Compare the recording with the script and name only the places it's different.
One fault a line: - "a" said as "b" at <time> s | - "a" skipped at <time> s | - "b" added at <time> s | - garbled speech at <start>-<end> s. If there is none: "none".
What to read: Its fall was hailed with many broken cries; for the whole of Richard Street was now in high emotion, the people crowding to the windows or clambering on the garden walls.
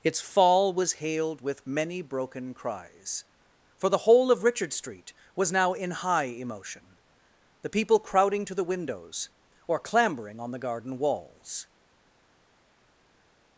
none